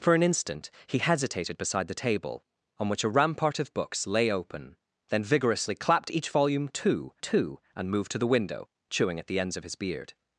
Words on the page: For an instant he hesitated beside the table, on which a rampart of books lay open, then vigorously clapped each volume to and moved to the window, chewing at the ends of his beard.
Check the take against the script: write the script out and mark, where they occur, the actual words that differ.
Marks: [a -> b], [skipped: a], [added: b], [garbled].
For an instant he hesitated beside the table, on which a rampart of books lay open, then vigorously clapped each volume to [added: to] and moved to the window, chewing at the ends of his beard.